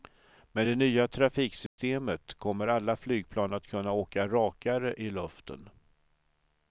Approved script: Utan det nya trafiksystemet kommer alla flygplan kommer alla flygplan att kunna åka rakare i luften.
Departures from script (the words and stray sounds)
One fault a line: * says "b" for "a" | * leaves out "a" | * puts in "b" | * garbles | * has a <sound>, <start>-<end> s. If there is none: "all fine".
* says "Med" for "Utan"
* has a dropout, 1.7-1.8 s
* leaves out "kommer alla flygplan"